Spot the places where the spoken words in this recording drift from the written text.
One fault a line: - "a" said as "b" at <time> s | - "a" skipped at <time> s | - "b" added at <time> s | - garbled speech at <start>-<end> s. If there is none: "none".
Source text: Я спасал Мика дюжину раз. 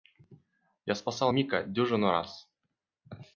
none